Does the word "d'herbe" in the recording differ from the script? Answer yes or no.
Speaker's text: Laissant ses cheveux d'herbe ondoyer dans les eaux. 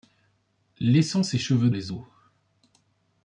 yes